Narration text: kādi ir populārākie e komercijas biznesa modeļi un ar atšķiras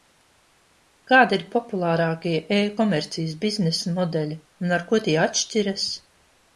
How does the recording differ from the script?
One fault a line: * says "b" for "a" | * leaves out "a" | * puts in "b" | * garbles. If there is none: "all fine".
* puts in "ko tie"